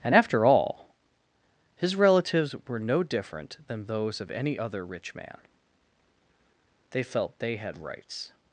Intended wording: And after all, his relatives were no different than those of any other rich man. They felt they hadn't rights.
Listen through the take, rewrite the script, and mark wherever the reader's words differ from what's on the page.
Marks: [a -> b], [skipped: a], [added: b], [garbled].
And after all, his relatives were no different than those of any other rich man. They felt they [hadn't -> had] rights.